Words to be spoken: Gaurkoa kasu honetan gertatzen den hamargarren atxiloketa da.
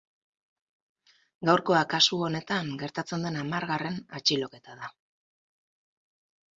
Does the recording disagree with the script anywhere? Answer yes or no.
no